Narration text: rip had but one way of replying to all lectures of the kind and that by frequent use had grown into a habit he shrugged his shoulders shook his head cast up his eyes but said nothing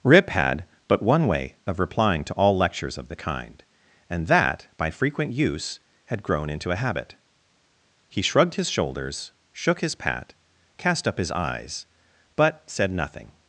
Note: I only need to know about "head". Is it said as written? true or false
false